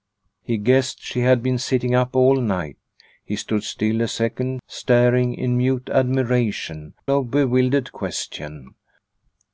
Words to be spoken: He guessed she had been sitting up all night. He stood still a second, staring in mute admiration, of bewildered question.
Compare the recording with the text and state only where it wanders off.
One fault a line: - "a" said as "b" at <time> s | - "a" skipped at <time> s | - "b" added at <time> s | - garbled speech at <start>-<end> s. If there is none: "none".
none